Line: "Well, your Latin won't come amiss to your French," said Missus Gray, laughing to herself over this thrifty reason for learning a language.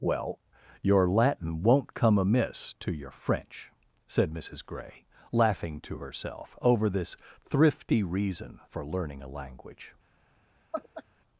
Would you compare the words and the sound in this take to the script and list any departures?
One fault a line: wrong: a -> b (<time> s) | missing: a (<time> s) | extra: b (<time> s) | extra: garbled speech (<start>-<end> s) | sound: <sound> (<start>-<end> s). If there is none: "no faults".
sound: laugh (10.7-11.0 s)